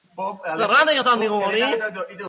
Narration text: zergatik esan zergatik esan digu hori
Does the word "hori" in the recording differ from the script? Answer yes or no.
no